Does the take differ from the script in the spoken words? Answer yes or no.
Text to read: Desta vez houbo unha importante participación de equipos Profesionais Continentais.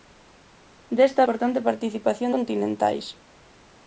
yes